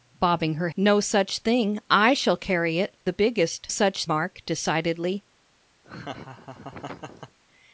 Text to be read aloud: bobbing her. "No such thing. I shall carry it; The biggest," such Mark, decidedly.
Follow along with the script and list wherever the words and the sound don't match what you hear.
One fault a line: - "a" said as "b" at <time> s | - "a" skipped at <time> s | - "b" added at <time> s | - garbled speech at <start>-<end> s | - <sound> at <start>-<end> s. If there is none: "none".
- laugh at 5.8-7.4 s